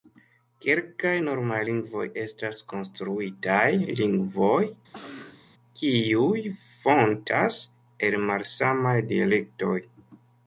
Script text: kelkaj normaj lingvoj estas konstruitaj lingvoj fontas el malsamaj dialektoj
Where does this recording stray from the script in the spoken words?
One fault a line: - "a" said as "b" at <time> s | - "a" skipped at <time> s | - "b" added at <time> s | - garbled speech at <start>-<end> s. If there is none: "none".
- "kiuj" added at 5.8 s